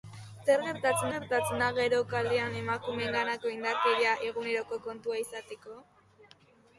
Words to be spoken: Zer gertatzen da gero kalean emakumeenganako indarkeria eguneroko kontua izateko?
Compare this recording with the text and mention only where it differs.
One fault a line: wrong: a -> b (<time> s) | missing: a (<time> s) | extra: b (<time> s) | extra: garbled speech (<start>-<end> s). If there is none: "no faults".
extra: gertatzen (1.1 s)